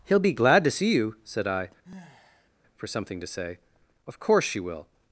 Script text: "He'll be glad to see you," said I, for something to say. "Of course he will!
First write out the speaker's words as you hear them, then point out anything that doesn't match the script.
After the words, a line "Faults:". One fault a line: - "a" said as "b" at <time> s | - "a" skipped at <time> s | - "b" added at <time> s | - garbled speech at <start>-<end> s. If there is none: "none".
"He'll be glad to see you," said I, for something to say. "Of course she will!
Faults:
- "he" said as "she" at 4.4 s